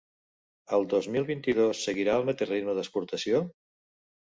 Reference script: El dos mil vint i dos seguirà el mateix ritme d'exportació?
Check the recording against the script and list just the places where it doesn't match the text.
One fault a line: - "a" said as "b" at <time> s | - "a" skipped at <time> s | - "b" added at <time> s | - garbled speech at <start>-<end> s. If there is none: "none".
none